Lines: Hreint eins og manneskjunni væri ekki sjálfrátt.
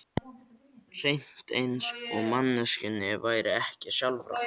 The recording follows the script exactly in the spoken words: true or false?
true